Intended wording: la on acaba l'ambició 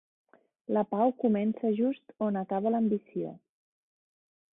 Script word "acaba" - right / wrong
right